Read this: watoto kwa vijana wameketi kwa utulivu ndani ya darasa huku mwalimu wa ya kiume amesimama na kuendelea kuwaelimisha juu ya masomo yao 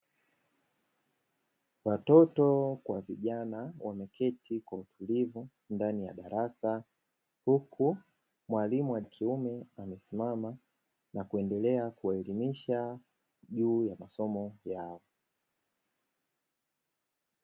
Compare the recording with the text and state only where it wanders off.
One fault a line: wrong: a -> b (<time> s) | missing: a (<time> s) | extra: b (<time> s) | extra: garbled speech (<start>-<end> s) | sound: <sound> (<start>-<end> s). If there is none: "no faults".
no faults